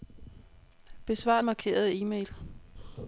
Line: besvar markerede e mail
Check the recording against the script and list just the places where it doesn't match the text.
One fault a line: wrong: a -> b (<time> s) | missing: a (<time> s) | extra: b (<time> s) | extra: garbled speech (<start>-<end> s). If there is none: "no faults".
no faults